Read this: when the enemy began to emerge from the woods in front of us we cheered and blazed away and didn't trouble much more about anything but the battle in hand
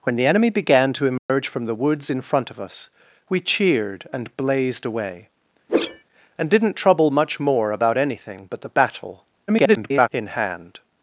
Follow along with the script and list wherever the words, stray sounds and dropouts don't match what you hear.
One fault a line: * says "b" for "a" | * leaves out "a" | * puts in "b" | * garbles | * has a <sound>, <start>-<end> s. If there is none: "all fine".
* has a dropout, 1.2-1.3 s
* has a whoosh, 5.7-6.0 s
* garbles